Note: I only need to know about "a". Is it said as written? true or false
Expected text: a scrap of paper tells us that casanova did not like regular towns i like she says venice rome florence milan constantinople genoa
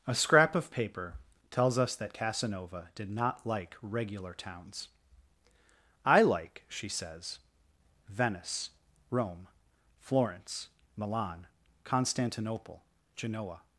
true